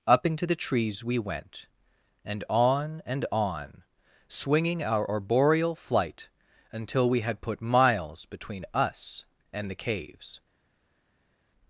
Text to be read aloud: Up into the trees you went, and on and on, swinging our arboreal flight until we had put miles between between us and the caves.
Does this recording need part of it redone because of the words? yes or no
yes